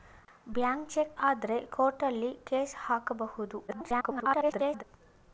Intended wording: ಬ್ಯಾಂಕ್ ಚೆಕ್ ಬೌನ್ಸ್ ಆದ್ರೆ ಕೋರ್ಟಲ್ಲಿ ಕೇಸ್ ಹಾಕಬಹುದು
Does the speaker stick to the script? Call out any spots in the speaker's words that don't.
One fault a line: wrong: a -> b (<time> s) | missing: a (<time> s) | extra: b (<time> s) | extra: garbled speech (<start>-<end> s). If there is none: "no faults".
missing: ಬೌನ್ಸ್ (1.2 s)
extra: garbled speech (3.7-4.8 s)